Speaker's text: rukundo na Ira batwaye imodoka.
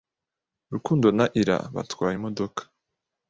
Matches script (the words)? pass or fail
pass